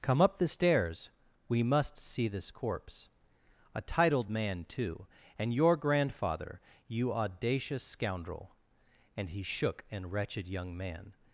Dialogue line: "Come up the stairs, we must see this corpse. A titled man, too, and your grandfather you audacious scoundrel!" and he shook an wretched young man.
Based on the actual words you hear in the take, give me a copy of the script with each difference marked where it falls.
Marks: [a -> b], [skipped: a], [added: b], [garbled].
"Come up the stairs, we must see this corpse. A titled man, too, and your grandfather you audacious scoundrel!" and he shook an wretched young man.